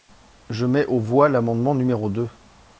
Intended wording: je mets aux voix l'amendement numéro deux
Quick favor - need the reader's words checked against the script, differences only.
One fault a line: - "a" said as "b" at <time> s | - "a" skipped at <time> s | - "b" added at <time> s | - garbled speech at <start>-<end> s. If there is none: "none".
none